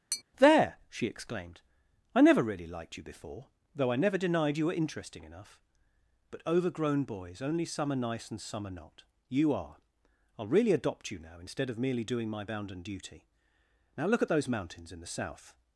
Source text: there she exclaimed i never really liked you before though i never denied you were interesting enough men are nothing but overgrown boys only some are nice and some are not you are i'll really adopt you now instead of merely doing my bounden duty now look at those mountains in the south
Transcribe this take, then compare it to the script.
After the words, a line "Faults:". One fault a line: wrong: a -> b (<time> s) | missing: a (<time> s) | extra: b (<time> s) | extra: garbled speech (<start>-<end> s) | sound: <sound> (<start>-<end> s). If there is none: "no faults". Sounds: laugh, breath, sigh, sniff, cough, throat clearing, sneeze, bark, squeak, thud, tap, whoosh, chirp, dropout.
there she exclaimed i never really liked you before though i never denied you were interesting enough but overgrown boys only some are nice and some are not you are i'll really adopt you now instead of merely doing my bounden duty now look at those mountains in the south
Faults:
sound: tap (0.1-0.2 s)
missing: men are nothing (5.6 s)